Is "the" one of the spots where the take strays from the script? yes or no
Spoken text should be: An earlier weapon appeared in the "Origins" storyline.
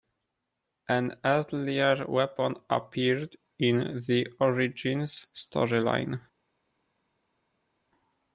no